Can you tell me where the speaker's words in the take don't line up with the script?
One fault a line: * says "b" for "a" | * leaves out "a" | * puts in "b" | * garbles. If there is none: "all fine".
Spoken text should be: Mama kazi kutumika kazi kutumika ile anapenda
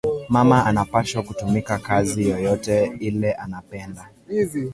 * says "anapashwa" for "kazi"
* says "yoyote" for "kutumika"